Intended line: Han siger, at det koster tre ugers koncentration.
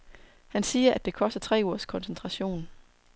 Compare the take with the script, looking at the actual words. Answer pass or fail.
pass